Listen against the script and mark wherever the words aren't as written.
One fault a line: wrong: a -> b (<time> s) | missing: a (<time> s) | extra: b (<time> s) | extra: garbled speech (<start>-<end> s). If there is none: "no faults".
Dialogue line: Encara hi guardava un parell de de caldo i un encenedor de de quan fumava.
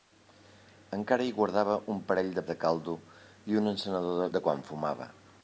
no faults